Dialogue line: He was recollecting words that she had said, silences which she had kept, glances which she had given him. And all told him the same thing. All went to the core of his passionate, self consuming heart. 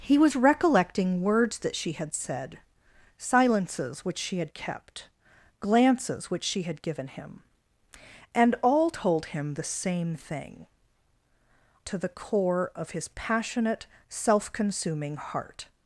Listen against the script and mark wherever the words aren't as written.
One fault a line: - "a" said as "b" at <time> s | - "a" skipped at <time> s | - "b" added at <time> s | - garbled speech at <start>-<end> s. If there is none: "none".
- "All went" skipped at 10.7 s